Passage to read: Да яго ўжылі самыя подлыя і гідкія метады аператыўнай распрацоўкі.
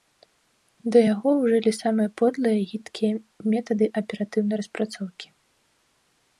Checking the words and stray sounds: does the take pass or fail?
pass